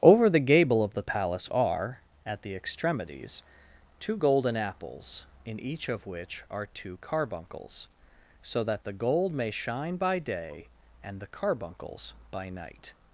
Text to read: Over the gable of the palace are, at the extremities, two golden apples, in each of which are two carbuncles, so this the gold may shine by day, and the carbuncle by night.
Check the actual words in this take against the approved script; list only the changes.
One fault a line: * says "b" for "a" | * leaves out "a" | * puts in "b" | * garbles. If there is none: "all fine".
* says "that" for "this"
* says "carbuncles" for "carbuncle"